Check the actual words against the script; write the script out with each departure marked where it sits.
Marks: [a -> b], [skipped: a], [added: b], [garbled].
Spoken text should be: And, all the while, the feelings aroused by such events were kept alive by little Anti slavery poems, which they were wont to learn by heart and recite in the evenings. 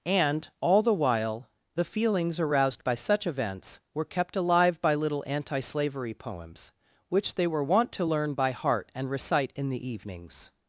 And, all the while, the feelings aroused by such events were kept alive by little Anti slavery poems, which they were wont to learn by heart and recite in the evenings.